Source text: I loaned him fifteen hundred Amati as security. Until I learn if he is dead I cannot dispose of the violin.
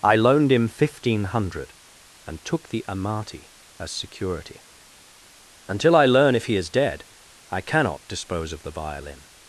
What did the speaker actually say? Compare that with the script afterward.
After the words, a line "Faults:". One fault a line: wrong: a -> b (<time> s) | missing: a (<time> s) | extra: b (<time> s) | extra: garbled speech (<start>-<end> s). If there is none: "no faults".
I loaned him fifteen hundred and took the Amati as security. Until I learn if he is dead I cannot dispose of the violin.
Faults:
extra: and took the (2.2 s)